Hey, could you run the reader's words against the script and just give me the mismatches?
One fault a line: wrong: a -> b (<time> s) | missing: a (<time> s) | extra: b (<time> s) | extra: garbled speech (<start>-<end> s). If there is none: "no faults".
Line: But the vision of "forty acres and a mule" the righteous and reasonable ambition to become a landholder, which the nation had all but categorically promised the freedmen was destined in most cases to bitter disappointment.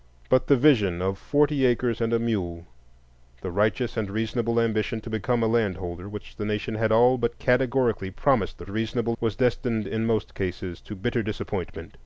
wrong: freedmen -> reasonable (8.7 s)